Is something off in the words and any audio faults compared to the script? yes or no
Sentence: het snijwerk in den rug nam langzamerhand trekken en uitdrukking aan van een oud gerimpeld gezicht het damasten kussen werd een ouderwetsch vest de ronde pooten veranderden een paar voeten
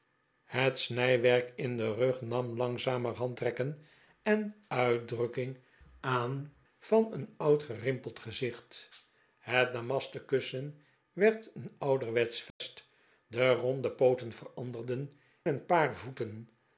yes